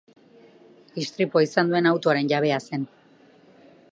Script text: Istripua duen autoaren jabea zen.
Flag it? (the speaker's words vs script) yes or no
yes